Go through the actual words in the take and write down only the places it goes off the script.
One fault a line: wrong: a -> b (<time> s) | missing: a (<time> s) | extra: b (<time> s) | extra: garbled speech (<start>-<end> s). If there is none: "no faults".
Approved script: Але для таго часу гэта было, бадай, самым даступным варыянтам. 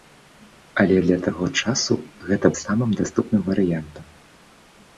missing: было бадай (2.5 s)